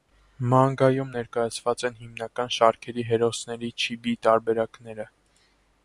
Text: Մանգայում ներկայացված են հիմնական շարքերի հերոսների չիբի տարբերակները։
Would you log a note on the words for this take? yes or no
no